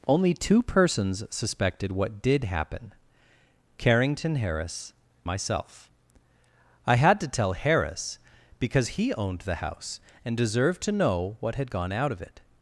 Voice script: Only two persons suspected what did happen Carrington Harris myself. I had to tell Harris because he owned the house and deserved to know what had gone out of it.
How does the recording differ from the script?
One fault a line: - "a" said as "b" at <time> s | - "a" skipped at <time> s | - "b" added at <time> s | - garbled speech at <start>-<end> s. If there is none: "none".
none